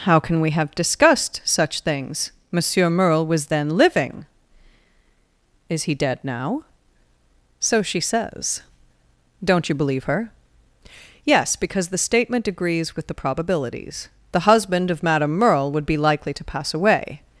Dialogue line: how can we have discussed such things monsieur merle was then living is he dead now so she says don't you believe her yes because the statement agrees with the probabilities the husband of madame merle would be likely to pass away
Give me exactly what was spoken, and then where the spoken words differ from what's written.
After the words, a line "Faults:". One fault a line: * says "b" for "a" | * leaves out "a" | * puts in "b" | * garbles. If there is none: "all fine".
how can we have discussed such things monsieur merle was then living is he dead now so she says don't you believe her yes because the statement agrees with the probabilities the husband of madame merle would be likely to pass away
Faults:
all fine